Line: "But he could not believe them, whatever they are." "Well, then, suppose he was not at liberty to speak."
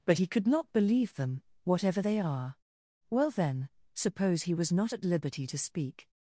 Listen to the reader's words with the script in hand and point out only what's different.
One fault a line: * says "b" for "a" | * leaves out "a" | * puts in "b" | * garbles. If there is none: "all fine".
all fine